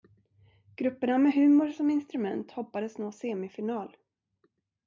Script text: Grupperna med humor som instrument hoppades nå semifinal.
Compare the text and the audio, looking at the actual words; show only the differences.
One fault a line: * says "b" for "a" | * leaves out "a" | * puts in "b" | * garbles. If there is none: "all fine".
all fine